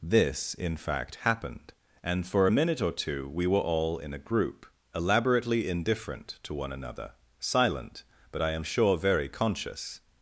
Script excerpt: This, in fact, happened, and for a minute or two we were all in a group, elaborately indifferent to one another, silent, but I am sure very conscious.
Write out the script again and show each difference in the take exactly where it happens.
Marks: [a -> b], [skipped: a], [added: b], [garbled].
This, in fact, happened, and for a minute or two we were all in a group, elaborately indifferent to one another, silent, but I am sure very conscious.